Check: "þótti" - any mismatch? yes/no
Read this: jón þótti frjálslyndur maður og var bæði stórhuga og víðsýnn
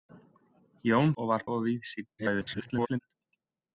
yes